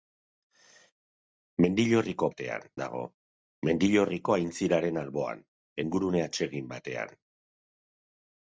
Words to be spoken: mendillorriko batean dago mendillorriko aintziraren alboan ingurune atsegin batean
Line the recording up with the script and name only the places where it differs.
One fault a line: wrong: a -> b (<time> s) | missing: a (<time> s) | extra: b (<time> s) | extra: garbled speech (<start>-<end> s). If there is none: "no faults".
no faults